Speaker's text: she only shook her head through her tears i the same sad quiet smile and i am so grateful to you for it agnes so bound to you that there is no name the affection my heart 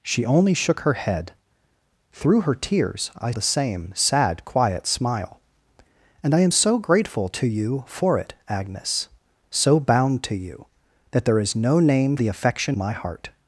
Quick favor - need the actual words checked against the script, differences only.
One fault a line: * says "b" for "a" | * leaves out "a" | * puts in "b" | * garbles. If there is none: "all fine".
all fine